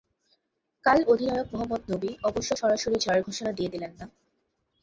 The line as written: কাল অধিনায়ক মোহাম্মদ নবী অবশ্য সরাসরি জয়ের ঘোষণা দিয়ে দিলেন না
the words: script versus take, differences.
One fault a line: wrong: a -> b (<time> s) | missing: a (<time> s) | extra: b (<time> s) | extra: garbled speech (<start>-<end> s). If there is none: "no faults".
no faults